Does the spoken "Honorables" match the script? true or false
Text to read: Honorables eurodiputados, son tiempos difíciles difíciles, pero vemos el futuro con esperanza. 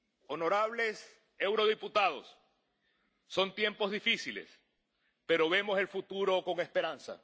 true